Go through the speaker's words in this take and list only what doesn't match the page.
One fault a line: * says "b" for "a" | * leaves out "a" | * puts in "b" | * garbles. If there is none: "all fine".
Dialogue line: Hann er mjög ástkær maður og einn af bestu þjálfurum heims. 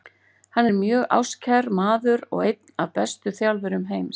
all fine